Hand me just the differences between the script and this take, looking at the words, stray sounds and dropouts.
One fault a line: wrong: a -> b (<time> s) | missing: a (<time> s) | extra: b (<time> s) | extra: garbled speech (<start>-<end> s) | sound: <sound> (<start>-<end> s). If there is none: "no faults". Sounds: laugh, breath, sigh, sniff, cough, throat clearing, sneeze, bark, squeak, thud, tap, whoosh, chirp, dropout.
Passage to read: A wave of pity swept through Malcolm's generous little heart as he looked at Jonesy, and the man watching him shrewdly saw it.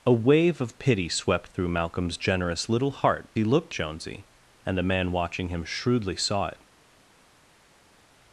missing: as (3.3 s)
missing: at (3.7 s)